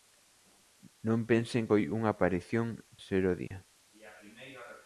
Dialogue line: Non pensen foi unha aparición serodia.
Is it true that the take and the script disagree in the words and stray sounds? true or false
true